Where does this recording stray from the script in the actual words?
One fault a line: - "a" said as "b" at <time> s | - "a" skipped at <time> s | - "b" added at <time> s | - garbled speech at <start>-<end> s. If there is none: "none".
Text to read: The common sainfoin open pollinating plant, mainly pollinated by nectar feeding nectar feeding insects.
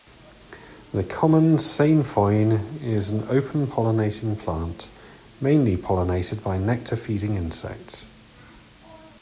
- "is an" added at 2.8 s
- "nectar feeding" skipped at 7.3 s